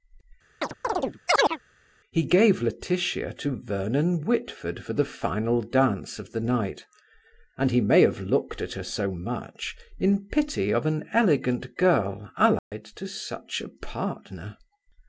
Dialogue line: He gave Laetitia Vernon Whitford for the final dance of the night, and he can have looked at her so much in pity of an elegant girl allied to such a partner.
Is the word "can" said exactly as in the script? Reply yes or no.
no